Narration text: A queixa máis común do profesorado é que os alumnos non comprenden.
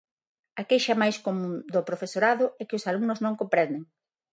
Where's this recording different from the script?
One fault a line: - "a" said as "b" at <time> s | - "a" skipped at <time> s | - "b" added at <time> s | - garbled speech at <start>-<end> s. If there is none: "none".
none